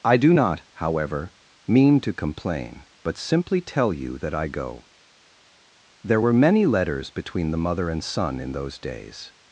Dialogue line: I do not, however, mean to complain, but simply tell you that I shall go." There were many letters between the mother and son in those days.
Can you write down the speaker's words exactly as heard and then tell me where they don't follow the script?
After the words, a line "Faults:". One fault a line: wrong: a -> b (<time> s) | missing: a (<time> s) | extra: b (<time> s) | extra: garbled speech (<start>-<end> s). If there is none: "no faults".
I do not, however, mean to complain, but simply tell you that I go." There were many letters between the mother and son in those days.
Faults:
missing: shall (4.5 s)